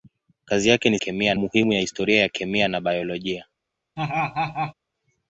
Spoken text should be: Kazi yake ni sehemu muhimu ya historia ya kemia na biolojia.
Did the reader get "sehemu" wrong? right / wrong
wrong